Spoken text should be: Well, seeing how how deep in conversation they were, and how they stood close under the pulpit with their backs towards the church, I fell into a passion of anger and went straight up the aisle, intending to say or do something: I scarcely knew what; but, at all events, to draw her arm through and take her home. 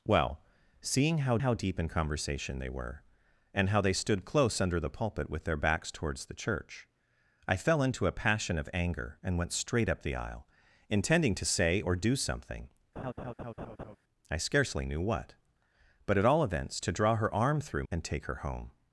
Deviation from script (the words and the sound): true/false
true